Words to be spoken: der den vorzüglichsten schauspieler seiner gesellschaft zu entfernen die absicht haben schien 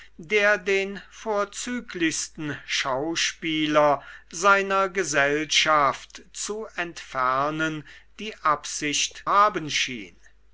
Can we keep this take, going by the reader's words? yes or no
yes